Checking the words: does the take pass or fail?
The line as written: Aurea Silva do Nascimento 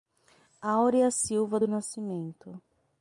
pass